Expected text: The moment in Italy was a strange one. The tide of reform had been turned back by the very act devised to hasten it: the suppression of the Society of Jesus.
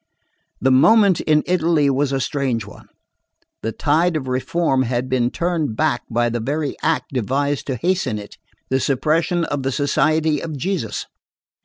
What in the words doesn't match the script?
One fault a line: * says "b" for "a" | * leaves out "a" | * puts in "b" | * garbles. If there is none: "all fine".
all fine